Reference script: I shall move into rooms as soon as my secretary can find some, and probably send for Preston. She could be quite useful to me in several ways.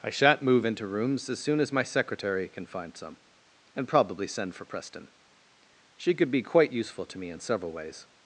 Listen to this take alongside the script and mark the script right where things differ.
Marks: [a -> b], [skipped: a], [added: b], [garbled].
I [shall -> shan't] move into rooms as soon as my secretary can find some, and probably send for Preston. She could be quite useful to me in several ways.